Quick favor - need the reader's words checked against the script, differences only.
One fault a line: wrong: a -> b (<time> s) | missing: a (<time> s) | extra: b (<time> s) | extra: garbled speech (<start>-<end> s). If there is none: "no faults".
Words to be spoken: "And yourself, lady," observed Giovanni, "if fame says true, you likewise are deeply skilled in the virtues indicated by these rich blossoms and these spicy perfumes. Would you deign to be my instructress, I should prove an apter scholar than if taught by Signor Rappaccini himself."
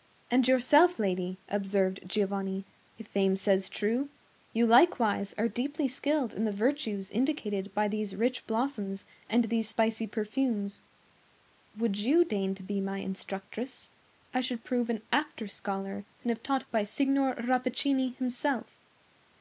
no faults